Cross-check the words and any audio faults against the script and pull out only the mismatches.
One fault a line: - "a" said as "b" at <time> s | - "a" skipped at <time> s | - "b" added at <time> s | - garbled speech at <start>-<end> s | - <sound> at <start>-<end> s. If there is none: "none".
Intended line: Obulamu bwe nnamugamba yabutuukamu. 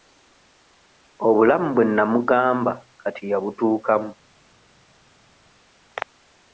- "kati" added at 3.0 s